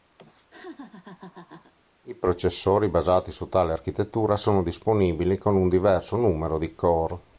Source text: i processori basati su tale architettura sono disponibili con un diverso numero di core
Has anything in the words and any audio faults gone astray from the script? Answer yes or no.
yes